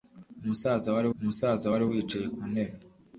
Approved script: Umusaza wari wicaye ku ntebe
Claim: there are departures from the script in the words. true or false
true